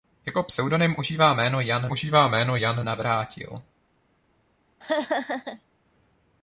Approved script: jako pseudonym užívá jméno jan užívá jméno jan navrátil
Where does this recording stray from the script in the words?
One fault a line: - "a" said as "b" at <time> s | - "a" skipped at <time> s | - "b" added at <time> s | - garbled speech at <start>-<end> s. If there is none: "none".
none